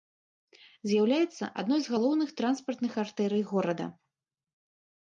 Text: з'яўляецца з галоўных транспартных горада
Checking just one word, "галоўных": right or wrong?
right